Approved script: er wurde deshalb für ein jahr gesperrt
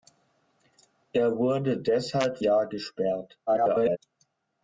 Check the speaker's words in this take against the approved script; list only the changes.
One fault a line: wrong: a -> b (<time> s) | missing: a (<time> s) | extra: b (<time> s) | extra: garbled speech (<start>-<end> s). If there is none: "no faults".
missing: für ein (2.4 s)
extra: garbled speech (3.5-4.0 s)